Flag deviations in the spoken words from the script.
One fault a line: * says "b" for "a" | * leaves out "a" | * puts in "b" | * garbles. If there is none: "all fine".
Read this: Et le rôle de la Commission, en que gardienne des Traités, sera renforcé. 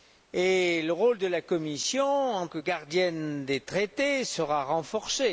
all fine